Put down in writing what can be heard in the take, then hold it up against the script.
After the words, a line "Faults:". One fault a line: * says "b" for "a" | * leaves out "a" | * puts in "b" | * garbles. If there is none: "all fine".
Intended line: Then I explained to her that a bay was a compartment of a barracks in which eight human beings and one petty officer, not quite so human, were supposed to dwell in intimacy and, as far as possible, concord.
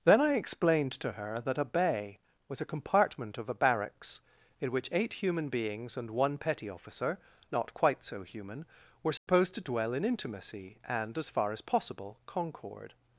Then I explained to her that a bay was a compartment of a barracks in which eight human beings and one petty officer, not quite so human, were supposed to dwell in intimacy and, as far as possible, concord.
Faults:
all fine